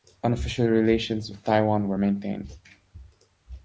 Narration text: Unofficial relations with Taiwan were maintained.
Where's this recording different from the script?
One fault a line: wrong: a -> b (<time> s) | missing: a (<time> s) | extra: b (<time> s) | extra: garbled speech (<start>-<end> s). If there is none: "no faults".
no faults